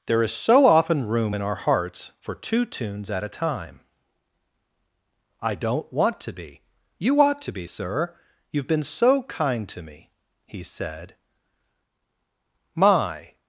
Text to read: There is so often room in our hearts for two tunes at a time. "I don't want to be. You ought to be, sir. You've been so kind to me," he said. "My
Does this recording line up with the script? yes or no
yes